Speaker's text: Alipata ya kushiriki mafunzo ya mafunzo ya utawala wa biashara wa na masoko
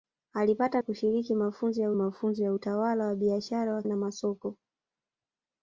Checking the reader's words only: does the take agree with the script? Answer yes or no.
yes